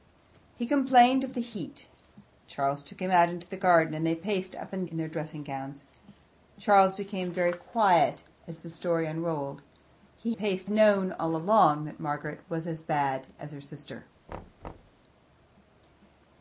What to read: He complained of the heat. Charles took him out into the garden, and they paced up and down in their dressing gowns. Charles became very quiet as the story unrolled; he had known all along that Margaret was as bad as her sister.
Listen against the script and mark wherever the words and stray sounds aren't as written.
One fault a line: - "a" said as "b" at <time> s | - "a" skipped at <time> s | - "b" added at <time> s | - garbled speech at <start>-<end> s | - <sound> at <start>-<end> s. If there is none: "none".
- "down" skipped at 4.9 s
- "had" said as "paced" at 10.3 s
- thud at 14.3-15.0 s